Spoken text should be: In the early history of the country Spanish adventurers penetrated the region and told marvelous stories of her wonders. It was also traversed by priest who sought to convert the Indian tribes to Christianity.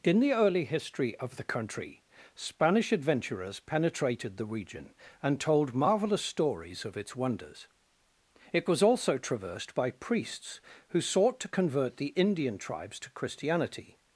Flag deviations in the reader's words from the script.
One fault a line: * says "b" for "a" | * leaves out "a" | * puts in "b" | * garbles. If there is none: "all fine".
* says "its" for "her"
* says "priests" for "priest"